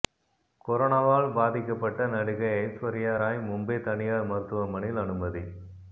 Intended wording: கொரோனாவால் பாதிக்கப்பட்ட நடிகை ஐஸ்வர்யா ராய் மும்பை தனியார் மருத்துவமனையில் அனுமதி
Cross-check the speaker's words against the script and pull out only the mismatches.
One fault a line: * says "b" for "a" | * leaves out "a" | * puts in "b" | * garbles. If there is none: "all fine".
all fine